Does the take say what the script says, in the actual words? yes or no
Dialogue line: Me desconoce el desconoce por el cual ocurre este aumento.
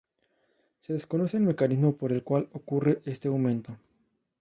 no